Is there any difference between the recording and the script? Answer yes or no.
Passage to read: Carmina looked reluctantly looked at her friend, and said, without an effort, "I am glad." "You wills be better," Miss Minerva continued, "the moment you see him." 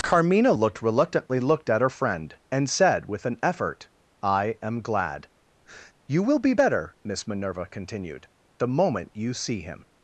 yes